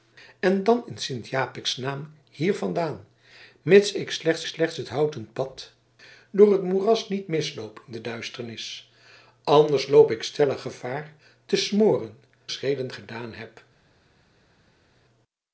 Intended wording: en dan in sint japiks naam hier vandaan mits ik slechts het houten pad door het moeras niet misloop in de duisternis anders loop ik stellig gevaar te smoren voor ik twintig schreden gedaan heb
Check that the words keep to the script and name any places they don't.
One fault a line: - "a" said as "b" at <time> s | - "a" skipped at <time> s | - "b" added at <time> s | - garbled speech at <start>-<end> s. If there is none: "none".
- "slechts" added at 4.4 s
- "voor ik twintig" skipped at 12.2 s